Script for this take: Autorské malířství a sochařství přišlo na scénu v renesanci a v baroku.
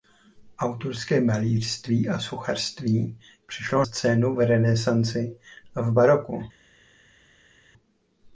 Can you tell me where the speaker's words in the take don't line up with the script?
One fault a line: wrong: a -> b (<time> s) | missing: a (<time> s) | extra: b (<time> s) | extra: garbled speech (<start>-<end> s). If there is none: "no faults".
missing: na (3.9 s)